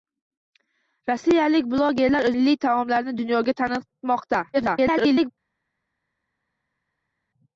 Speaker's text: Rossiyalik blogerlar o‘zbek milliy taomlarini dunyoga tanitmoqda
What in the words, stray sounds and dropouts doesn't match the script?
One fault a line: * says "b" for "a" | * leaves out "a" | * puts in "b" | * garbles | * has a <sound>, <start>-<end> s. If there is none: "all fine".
* leaves out "o‘zbek"
* garbles